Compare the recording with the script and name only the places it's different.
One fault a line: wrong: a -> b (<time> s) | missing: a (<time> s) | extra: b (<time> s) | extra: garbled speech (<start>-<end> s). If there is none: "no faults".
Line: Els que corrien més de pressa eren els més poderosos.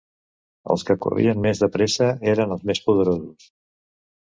no faults